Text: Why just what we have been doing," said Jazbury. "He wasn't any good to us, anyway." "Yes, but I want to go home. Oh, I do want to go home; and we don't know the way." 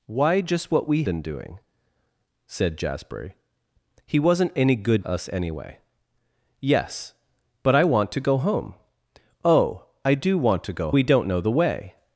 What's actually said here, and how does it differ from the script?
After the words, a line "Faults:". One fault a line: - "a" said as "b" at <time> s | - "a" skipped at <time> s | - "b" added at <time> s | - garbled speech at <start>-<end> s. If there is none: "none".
Why just what we been doing," said Jazbury. "He wasn't any good us, anyway." "Yes, but I want to go home. Oh, I do want to go we don't know the way."
Faults:
- "have" skipped at 1.0 s
- "to" skipped at 5.1 s
- "home and" skipped at 10.9 s